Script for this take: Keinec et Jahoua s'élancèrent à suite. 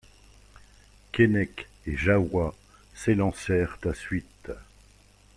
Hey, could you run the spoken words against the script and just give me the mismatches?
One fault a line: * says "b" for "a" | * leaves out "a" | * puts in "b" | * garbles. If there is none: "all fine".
all fine